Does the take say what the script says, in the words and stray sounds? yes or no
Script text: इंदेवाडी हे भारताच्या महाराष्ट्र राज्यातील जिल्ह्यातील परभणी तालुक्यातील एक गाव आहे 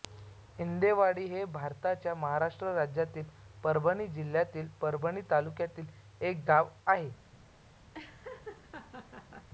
no